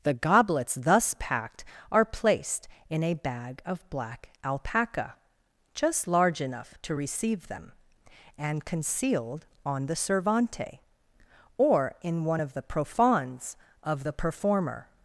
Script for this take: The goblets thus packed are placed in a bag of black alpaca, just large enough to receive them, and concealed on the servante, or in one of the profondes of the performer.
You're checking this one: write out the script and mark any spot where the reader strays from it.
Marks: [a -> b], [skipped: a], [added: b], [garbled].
The goblets thus packed are placed in a bag of black alpaca, just large enough to receive them, and concealed on the servante, or in one of the profondes of the performer.